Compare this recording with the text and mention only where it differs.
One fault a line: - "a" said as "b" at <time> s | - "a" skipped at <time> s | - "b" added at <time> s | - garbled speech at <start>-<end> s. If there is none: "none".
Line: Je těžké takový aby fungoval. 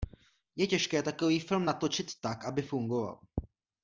- "film natočit tak" added at 1.4 s